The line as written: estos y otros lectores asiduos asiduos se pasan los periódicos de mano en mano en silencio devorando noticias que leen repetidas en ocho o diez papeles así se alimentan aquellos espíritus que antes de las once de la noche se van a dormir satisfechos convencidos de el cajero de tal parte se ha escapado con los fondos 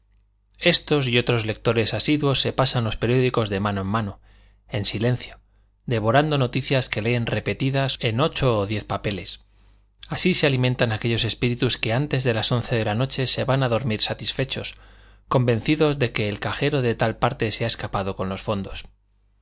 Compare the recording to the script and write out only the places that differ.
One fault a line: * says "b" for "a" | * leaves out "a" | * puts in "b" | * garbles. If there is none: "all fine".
* leaves out "asiduos"
* puts in "que"